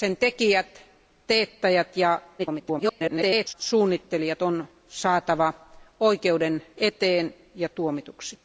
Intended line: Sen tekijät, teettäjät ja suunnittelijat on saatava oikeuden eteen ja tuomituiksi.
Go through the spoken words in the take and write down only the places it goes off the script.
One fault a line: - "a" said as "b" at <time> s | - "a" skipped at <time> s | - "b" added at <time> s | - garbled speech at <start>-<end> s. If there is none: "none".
- garbled speech at 2.4-3.5 s